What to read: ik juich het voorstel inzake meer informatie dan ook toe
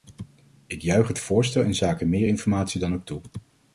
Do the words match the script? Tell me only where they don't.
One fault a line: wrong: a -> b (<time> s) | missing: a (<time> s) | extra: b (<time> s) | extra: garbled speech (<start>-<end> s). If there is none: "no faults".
no faults